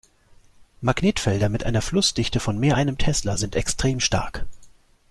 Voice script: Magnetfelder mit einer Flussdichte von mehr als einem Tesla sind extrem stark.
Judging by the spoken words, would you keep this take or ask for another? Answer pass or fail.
fail